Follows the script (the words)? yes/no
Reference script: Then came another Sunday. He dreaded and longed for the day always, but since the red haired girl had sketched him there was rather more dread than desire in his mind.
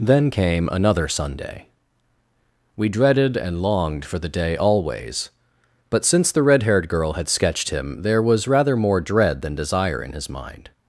no